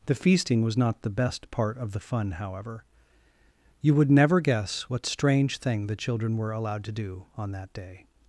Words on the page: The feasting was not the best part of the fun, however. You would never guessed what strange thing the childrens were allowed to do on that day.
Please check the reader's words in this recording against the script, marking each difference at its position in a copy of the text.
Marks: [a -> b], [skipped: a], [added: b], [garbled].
The feasting was not the best part of the fun, however. You would never [guessed -> guess] what strange thing the [childrens -> children] were allowed to do on that day.